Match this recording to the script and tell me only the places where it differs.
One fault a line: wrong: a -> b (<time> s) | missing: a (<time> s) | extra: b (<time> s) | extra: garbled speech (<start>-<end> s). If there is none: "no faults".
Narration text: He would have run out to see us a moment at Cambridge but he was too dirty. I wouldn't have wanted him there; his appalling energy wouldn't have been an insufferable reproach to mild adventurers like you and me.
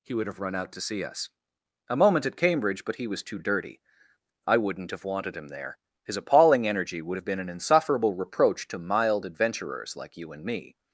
wrong: wouldn't -> would (7.0 s)